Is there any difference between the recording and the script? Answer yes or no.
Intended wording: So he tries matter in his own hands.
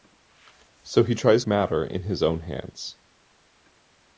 no